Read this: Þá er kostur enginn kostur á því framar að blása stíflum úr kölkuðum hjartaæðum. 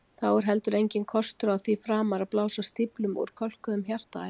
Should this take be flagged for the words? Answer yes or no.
yes